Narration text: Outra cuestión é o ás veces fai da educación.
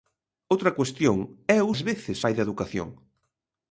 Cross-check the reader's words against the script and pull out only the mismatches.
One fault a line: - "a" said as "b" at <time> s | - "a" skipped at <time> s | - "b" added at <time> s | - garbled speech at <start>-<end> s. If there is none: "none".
none